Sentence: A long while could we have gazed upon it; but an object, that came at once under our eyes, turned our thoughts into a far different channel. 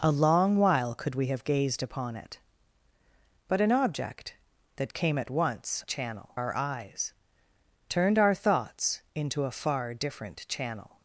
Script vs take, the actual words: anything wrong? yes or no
yes